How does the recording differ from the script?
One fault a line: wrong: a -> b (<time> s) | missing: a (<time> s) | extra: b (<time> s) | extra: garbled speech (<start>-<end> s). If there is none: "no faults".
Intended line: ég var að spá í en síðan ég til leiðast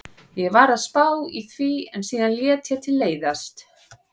extra: því (1.5 s)
extra: lét (2.4 s)